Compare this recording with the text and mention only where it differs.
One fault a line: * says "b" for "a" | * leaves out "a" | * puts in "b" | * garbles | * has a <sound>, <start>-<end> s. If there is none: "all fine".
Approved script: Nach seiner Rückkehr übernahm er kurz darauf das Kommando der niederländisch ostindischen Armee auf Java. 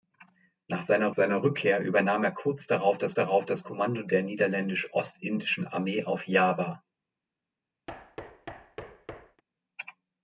* puts in "seiner"
* puts in "darauf das"
* has a thud, 7.9-9.4 s